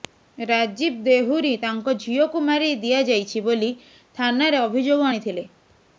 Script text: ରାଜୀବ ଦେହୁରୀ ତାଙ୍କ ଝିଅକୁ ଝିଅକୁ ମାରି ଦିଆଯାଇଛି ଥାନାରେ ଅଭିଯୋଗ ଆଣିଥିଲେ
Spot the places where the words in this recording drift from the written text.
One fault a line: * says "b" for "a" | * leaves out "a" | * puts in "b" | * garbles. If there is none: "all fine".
* leaves out "ଝିଅକୁ"
* puts in "ବୋଲି"